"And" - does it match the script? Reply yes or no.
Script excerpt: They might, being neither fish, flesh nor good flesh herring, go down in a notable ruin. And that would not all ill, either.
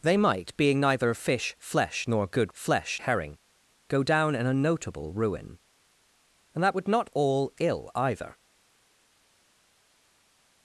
yes